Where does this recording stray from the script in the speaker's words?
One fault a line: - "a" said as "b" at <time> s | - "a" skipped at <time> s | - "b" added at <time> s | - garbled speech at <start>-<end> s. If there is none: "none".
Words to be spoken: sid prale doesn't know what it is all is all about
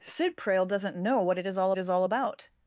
none